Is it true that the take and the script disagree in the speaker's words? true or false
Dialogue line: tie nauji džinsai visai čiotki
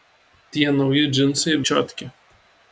true